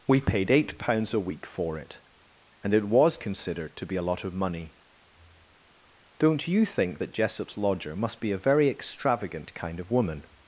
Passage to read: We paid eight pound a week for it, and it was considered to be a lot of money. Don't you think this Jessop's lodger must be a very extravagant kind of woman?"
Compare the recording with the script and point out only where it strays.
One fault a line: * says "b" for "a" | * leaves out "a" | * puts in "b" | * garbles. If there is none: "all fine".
* says "pounds" for "pound"
* says "that" for "this"